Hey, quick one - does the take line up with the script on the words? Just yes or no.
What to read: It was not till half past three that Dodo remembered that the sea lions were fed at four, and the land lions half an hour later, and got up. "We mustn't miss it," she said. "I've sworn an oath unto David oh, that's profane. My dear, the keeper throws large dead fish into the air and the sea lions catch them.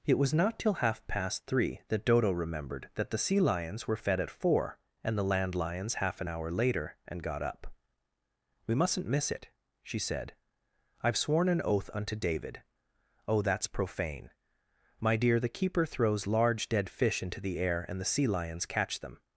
yes